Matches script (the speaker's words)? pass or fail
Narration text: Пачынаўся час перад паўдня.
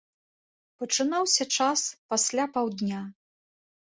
fail